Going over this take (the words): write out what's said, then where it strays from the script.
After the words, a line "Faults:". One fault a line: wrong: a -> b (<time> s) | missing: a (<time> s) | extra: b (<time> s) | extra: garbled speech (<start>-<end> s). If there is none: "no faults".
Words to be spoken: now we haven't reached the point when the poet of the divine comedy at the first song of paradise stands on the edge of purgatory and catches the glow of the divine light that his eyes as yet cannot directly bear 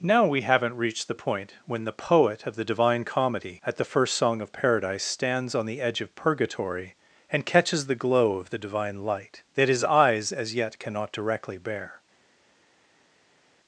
now we haven't reached the point when the poet of the divine comedy at the first song of paradise stands on the edge of purgatory and catches the glow of the divine light that his eyes as yet cannot directly bear
Faults:
no faults